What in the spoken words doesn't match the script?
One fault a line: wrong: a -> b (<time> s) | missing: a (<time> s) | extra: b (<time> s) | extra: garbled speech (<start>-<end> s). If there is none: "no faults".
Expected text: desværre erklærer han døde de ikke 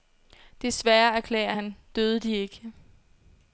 no faults